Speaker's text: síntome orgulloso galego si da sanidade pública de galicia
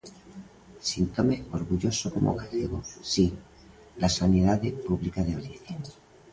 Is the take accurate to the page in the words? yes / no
no